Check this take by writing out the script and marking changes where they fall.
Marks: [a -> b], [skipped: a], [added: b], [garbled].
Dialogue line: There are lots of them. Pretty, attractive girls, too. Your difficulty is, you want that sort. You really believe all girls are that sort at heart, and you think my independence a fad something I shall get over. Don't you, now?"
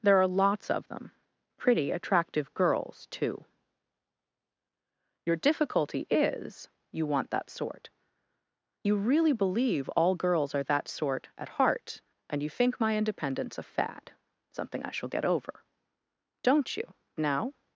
There are lots of them. Pretty, attractive girls, too. Your difficulty is, you want that sort. You really believe all girls are that sort at heart, and you think my independence a fad something I shall get over. Don't you, now?"